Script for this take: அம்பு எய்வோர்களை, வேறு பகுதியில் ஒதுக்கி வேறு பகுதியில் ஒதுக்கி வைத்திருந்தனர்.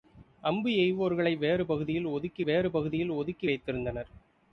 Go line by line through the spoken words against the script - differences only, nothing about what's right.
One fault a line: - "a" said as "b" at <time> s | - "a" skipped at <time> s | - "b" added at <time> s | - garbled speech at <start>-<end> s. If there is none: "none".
none